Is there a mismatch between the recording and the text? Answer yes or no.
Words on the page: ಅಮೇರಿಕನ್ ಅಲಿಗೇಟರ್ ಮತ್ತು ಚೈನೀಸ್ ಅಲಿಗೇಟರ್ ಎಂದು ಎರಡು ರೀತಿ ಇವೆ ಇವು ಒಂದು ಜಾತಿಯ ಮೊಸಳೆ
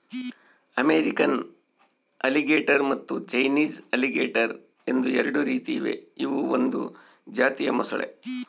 no